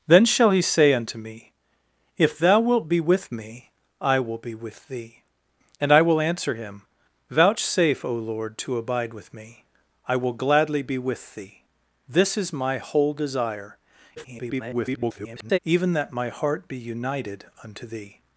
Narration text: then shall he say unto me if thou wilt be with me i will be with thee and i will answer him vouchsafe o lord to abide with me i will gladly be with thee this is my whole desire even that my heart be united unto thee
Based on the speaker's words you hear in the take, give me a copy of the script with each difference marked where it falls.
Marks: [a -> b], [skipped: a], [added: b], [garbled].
then shall he say unto me if thou wilt be with me i will be with thee and i will answer him vouchsafe o lord to abide with me i will gladly be with thee this is my whole desire [garbled] even that my heart be united unto thee